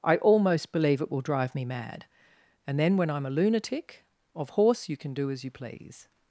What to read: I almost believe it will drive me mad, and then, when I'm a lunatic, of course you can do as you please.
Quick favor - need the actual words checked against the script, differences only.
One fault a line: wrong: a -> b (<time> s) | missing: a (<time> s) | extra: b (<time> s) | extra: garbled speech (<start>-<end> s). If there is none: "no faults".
wrong: course -> horse (4.5 s)